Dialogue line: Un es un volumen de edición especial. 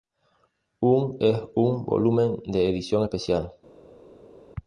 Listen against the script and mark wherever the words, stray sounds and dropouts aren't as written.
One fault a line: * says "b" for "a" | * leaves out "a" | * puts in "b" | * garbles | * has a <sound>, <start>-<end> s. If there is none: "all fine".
all fine